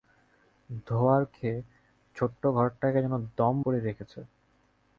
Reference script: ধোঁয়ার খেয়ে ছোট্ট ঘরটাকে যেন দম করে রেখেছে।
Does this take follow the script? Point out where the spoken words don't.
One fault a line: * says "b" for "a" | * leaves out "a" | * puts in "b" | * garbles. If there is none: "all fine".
all fine